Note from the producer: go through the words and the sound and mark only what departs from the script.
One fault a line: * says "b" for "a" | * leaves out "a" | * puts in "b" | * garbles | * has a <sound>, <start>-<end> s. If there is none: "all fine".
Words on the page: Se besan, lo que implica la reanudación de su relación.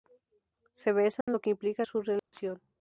* has a dropout, 1.2-1.3 s
* leaves out "la reanudación de"
* has a dropout, 2.2-2.3 s